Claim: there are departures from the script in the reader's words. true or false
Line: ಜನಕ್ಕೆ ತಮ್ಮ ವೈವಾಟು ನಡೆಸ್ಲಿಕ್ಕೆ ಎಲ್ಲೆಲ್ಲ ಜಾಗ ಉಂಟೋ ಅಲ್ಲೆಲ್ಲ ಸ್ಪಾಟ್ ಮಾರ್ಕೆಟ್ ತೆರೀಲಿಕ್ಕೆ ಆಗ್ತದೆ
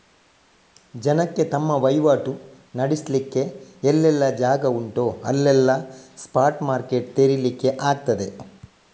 false